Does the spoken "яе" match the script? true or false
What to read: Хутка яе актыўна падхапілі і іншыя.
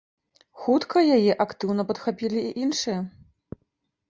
true